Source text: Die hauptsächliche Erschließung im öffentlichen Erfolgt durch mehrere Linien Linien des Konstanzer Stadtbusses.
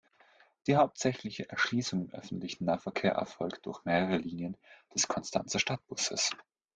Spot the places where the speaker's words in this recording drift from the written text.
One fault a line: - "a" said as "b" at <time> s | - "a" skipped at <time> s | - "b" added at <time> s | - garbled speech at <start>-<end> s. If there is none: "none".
- "Nahverkehr" added at 2.6 s
- "Linien" skipped at 4.6 s